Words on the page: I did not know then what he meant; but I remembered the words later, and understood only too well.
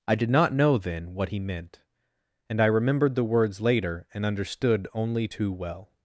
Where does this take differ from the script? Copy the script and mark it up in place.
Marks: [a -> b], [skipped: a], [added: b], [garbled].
I did not know then what he meant; [but -> and] I remembered the words later, and understood only too well.